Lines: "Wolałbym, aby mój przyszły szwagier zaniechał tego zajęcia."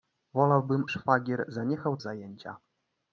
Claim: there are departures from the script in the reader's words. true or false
true